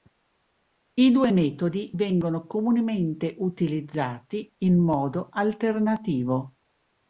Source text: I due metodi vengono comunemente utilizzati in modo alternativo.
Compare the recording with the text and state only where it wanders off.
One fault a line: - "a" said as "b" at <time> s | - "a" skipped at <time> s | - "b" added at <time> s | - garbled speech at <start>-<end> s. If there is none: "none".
none